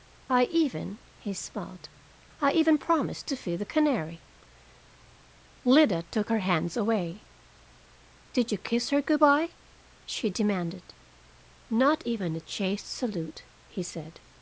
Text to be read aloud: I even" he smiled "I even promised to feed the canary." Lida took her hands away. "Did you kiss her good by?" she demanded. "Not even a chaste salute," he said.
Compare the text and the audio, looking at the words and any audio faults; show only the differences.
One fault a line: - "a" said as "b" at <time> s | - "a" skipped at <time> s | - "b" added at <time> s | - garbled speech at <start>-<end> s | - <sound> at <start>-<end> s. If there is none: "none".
none